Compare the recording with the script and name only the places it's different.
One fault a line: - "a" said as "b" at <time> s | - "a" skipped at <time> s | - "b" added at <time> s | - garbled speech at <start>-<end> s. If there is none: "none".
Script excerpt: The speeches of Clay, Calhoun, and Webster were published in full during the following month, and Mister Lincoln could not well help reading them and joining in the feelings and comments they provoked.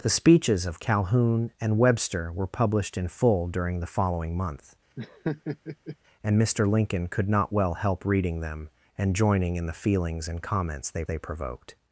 - "Clay" skipped at 0.8 s
- "they" added at 11.0 s